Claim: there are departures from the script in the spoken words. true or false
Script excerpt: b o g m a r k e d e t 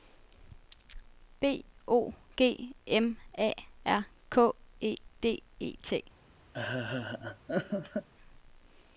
false